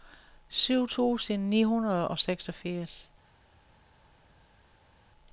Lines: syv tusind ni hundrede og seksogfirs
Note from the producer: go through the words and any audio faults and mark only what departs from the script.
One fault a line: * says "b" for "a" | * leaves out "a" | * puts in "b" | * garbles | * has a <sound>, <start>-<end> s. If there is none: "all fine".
all fine